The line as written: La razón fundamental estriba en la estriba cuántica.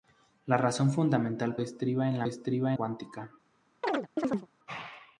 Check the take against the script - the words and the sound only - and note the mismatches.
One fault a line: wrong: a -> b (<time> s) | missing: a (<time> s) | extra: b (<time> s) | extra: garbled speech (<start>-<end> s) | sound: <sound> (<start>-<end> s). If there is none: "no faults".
sound: chirp (3.8-4.5 s)